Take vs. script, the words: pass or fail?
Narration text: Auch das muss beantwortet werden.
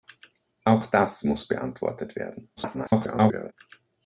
fail